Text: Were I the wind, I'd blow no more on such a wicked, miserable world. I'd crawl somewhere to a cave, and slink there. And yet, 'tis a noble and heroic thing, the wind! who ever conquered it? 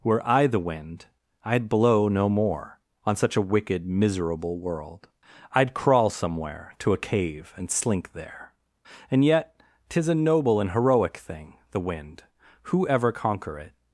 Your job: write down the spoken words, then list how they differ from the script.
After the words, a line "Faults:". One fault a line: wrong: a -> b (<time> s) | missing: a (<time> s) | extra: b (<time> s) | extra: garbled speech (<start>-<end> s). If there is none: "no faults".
Were I the wind, I'd blow no more on such a wicked, miserable world. I'd crawl somewhere to a cave, and slink there. And yet, 'tis a noble and heroic thing, the wind! who ever conquer it?
Faults:
wrong: conquered -> conquer (13.1 s)